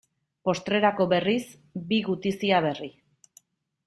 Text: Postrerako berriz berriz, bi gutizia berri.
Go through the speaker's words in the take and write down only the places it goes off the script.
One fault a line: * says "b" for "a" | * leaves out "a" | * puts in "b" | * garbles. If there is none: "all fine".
* leaves out "berriz"